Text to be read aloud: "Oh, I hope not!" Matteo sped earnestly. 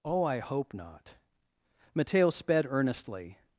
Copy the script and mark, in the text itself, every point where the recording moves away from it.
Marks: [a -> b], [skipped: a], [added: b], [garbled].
"Oh, I hope not!" Matteo sped earnestly.